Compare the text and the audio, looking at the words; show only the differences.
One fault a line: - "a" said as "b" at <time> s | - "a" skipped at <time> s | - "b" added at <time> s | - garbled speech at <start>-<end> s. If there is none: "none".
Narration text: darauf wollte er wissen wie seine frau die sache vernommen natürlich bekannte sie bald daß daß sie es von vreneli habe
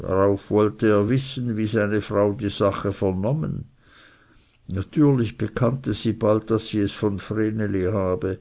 - "daß" skipped at 6.7 s